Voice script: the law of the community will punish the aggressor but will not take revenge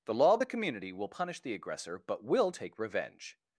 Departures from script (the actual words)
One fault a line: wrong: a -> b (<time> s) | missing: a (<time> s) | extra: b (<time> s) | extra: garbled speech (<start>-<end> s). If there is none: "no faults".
missing: not (2.5 s)